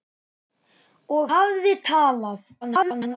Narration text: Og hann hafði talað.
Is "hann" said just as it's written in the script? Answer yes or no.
no